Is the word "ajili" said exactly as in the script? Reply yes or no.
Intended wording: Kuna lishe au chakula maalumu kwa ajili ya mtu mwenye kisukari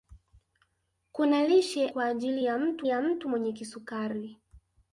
no